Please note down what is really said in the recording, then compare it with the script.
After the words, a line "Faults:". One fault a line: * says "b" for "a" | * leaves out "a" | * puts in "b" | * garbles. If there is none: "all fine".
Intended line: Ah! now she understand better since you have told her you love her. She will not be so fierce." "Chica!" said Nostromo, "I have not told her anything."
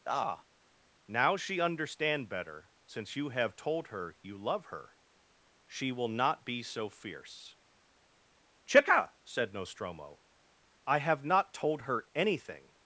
Ah! now she understand better since you have told her you love her. She will not be so fierce." "Chica!" said Nostromo, "I have not told her anything."
Faults:
all fine